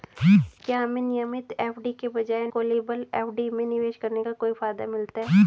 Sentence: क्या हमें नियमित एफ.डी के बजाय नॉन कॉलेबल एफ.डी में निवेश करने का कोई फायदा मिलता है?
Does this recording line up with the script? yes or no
no